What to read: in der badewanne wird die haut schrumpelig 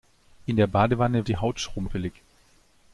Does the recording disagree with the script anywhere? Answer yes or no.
yes